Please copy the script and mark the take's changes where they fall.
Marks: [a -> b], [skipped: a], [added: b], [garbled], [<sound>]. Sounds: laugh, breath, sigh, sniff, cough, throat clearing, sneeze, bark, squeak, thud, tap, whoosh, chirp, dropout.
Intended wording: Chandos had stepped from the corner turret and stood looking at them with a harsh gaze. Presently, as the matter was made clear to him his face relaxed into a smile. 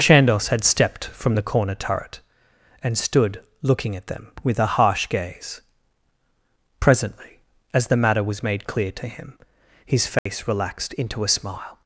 Chandos had stepped from the corner turret and stood looking at them with a harsh gaze. Presently, as the matter was made clear to him his face [dropout] relaxed into a smile.